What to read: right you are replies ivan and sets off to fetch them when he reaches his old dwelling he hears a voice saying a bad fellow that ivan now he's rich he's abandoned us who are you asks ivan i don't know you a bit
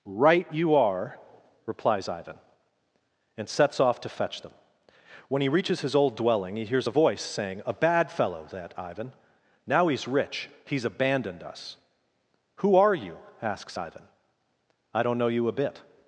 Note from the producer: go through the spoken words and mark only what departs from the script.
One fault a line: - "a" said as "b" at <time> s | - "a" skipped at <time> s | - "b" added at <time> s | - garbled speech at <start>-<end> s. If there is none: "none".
none